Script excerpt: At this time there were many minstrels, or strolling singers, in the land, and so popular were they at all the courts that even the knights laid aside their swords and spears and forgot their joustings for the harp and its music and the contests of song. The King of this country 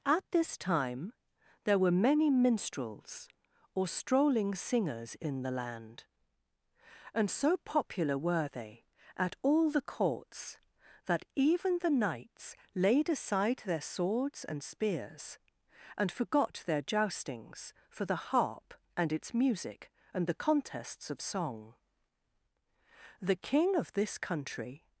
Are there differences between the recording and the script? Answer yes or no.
no